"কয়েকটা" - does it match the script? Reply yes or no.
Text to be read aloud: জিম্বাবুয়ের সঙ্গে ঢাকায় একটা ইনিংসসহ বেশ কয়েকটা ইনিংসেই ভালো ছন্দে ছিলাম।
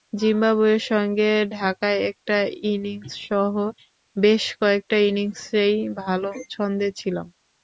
yes